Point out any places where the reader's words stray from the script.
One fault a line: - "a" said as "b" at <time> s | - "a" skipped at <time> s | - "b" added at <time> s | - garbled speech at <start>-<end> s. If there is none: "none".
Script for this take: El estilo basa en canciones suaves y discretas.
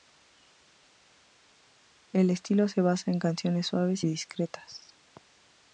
- "se" added at 2.7 s